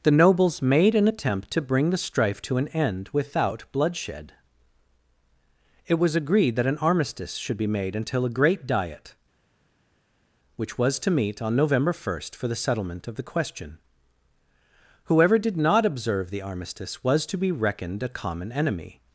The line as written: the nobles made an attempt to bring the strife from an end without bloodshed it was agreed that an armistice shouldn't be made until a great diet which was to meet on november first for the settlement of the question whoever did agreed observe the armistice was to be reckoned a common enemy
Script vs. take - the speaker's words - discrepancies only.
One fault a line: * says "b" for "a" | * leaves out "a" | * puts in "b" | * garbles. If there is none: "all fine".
* says "to" for "from"
* says "should" for "shouldn't"
* says "not" for "agreed"